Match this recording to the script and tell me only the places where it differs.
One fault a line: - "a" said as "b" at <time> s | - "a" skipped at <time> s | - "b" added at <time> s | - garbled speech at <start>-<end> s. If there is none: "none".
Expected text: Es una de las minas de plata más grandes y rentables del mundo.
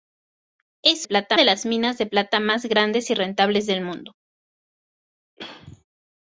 - "una" said as "plata" at 1.0 s